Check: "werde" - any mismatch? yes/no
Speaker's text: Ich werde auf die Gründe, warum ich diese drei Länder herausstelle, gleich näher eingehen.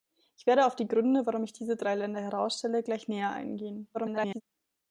no